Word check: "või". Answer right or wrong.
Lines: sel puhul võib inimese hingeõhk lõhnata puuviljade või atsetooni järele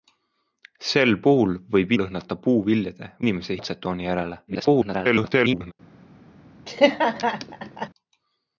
wrong